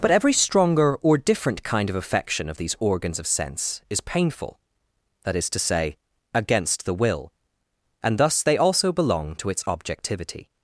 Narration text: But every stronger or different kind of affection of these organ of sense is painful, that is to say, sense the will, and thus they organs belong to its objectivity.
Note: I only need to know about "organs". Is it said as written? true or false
false